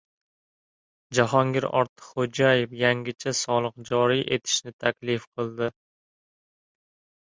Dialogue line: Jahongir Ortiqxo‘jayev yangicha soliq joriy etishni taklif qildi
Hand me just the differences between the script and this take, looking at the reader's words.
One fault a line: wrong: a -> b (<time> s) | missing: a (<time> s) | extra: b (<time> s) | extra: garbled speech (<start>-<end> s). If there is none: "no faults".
no faults